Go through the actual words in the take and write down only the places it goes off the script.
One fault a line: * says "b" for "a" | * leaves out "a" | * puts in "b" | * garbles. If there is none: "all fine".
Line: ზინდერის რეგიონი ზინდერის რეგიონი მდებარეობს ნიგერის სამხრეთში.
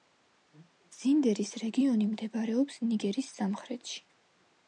* leaves out "ზინდერის რეგიონი"